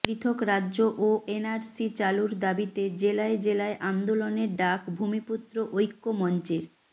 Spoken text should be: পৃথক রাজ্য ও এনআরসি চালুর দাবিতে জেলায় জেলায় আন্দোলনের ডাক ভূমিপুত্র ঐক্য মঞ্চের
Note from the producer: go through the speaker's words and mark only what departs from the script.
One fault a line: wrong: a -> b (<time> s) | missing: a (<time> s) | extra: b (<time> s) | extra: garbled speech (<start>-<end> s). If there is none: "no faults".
no faults